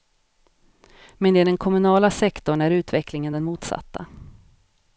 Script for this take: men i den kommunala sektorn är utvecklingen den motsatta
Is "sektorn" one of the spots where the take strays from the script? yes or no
no